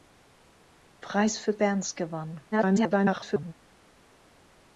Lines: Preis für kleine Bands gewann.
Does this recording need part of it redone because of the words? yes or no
yes